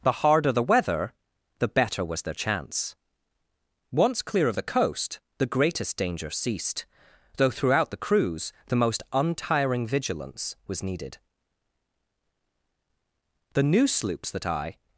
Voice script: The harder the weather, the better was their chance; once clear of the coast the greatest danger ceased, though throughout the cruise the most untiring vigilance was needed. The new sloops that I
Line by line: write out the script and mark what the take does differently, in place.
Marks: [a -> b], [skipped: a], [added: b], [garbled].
The harder the weather, the better was their chance; once clear of the coast the greatest danger ceased, though throughout the cruise the most untiring vigilance was needed. The new sloops that I